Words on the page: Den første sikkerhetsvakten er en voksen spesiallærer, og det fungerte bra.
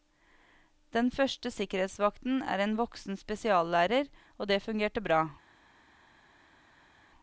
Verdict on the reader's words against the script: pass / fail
pass